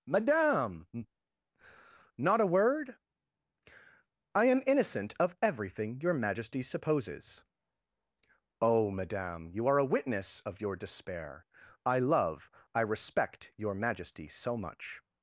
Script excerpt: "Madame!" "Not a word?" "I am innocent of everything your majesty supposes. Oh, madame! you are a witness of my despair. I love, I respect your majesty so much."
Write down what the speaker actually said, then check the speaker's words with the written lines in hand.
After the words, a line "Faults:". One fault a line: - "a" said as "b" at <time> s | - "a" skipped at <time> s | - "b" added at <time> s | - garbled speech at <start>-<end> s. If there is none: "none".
"Madame!" "Not a word?" "I am innocent of everything your majesty supposes. Oh, madame! you are a witness of your despair. I love, I respect your majesty so much."
Faults:
- "my" said as "your" at 10.6 s